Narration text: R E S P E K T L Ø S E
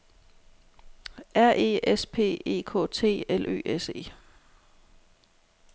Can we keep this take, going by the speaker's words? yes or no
yes